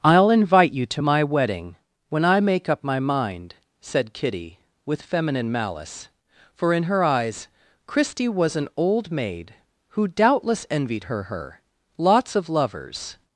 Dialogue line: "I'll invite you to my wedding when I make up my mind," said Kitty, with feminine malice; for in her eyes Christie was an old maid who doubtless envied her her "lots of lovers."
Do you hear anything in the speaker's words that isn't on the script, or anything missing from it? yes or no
no